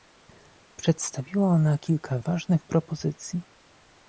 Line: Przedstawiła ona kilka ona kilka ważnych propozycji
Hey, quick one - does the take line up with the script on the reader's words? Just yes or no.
no